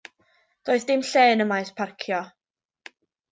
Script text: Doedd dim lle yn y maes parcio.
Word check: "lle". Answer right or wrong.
right